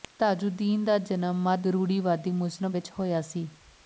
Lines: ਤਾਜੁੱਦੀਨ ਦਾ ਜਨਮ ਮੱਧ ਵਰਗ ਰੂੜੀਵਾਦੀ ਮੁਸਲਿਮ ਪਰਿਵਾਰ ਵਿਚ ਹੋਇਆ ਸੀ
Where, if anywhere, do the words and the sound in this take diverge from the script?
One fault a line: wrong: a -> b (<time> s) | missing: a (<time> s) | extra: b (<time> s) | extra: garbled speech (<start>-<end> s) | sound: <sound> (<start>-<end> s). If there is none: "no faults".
missing: ਵਰਗ (1.7 s)
missing: ਪਰਿਵਾਰ (2.7 s)